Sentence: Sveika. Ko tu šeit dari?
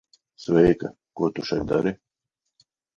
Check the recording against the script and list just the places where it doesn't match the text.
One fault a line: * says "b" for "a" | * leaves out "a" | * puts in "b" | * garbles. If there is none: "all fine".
all fine